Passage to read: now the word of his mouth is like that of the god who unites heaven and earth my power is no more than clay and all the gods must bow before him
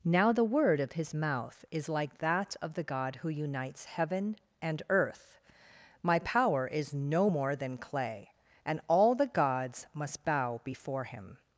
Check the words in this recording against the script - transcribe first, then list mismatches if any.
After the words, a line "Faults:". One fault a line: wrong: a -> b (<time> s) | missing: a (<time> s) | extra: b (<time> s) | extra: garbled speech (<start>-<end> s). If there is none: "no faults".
now the word of his mouth is like that of the god who unites heaven and earth my power is no more than clay and all the gods must bow before him
Faults:
no faults